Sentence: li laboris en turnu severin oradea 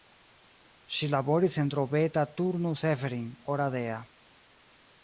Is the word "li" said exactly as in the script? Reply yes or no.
no